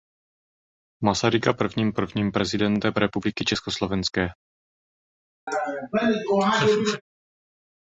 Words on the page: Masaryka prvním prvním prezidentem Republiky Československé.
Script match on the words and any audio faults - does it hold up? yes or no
no